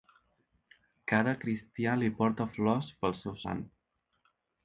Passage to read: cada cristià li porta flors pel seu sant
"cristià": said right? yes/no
yes